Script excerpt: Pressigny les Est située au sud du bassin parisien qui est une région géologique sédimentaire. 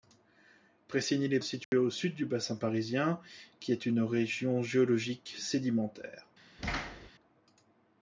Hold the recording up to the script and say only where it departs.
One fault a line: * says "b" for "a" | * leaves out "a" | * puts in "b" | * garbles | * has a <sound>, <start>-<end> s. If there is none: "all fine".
* has a dropout, 1.6-1.7 s
* has a thud, 6.6-7.1 s